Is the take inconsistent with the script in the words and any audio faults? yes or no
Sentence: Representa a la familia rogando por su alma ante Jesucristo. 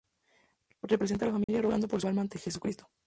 yes